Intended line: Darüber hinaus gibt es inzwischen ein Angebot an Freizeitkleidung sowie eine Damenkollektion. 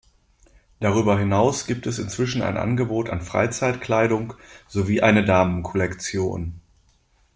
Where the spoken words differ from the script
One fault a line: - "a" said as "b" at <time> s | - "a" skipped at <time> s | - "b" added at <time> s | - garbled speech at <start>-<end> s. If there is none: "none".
none